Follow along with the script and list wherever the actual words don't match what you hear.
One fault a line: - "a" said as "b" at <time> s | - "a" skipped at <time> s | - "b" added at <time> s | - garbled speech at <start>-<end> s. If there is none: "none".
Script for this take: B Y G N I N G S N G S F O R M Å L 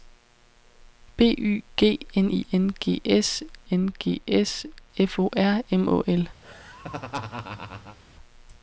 none